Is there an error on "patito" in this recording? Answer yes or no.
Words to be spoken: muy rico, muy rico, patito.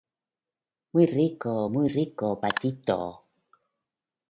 no